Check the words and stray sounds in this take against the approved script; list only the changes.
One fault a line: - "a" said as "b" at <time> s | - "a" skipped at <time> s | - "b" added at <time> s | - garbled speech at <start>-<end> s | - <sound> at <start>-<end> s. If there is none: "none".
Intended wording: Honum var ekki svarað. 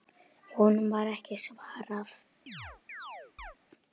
- chirp at 2.5-3.6 s